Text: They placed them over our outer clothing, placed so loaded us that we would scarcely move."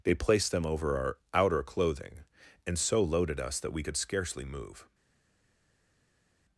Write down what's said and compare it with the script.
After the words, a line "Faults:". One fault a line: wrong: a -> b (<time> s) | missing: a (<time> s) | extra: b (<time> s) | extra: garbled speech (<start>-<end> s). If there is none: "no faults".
They placed them over our outer clothing, and so loaded us that we could scarcely move."
Faults:
wrong: placed -> and (2.6 s)
wrong: would -> could (3.8 s)